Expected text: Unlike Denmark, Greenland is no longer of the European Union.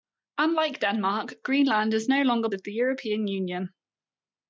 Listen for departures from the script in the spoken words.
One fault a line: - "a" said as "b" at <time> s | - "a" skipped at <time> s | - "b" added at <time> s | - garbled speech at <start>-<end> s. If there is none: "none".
none